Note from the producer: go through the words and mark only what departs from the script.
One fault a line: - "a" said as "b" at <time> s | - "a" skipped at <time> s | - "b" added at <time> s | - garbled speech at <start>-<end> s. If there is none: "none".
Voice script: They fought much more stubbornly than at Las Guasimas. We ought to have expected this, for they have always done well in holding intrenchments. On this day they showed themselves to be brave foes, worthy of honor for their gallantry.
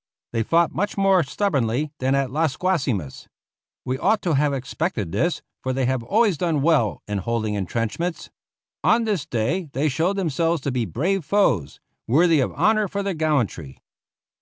none